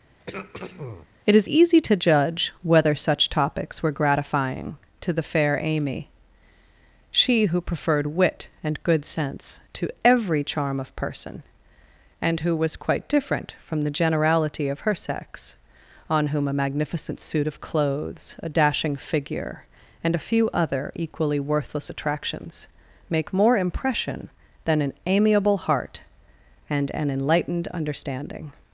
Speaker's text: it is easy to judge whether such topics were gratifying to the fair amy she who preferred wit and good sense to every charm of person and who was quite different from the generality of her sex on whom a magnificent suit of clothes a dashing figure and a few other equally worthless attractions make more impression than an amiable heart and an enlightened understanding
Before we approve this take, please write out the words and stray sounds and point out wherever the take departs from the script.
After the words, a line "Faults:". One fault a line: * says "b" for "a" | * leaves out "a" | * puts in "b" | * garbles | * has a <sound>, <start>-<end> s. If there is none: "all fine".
it is easy to judge whether such topics were gratifying to the fair amy she who preferred wit and good sense to every charm of person and who was quite different from the generality of her sex on whom a magnificent suit of clothes a dashing figure and a few other equally worthless attractions make more impression than an amiable heart and an enlightened understanding
Faults:
* has a throat clearing, 0.2-1.1 s